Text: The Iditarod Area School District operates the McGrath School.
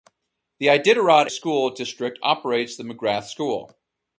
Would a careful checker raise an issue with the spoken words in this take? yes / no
yes